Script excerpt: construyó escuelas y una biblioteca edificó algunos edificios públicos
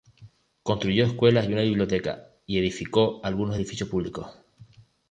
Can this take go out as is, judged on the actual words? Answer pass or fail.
fail